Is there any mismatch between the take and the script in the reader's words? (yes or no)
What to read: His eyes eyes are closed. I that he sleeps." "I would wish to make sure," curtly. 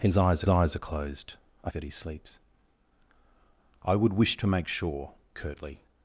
no